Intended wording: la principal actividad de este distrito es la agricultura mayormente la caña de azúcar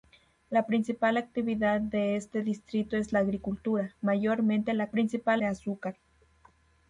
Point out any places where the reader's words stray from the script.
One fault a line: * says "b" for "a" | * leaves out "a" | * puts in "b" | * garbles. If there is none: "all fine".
* says "principal" for "caña"